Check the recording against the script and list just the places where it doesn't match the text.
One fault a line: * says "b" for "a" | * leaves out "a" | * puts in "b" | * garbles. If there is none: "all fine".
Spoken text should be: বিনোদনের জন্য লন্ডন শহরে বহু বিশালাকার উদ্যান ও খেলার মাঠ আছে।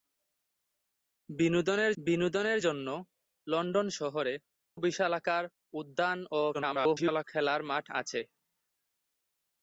* puts in "বিনোদনের"
* leaves out "বহু"
* garbles